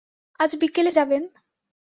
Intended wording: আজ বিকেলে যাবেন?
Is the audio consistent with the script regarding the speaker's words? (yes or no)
yes